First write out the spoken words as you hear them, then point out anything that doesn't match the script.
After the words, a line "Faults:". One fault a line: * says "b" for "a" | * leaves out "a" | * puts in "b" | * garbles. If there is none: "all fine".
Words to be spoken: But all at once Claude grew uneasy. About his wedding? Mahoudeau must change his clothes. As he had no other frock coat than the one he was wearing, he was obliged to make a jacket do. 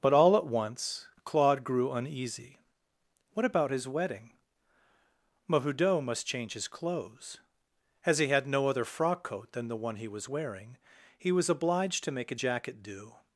But all at once Claude grew uneasy. What about his wedding? Mahoudeau must change his clothes. As he had no other frock coat than the one he was wearing, he was obliged to make a jacket do.
Faults:
* puts in "What"